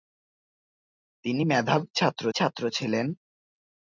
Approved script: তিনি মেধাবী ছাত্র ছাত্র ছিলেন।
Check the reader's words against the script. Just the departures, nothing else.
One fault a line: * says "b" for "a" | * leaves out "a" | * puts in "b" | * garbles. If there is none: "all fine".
all fine